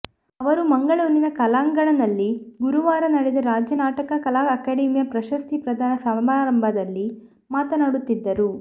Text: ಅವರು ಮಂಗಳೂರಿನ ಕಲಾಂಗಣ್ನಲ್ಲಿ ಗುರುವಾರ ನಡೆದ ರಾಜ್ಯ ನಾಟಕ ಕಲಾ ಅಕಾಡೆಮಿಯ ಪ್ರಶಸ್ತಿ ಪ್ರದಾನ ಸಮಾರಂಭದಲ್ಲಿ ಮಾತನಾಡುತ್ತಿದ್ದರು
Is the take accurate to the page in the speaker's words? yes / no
yes